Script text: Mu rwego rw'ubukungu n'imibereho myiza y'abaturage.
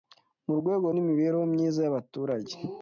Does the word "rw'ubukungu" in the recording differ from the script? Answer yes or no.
yes